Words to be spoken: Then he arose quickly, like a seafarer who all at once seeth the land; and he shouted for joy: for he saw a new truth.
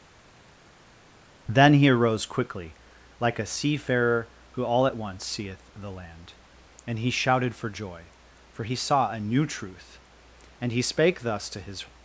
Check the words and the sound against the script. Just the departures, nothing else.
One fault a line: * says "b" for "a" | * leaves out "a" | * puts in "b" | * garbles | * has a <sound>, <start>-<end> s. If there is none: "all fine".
* puts in "And he spake thus to his"